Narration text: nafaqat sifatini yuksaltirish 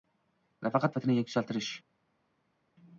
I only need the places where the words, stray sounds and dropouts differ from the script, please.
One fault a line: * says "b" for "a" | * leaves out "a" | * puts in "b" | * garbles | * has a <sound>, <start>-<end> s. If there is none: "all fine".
all fine